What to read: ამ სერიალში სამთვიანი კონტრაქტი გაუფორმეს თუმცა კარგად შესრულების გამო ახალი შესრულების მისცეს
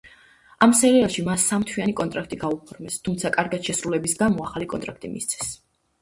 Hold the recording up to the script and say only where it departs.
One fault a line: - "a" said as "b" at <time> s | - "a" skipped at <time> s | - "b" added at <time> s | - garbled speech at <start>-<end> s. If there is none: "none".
- "მას" added at 1.2 s
- "შესრულების" said as "კონტრაქტი" at 4.8 s